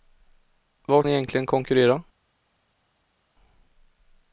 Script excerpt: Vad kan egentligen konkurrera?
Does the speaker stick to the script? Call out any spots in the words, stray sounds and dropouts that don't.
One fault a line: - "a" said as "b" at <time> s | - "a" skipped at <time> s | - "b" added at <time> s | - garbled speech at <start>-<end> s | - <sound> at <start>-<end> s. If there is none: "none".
- "kan" skipped at 1.1 s